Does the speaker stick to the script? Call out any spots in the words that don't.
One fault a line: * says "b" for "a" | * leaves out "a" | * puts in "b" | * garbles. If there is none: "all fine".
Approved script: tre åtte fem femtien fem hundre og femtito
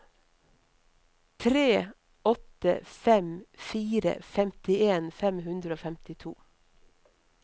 * puts in "fire"